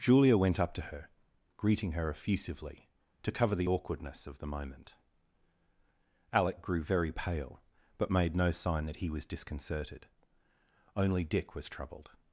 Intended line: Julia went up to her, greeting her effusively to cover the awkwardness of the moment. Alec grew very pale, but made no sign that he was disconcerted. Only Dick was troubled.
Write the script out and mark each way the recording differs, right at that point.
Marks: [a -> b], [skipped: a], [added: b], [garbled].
Julia went up to her, greeting her effusively to cover the awkwardness of the moment. Alec grew very pale, but made no sign that he was disconcerted. Only Dick was troubled.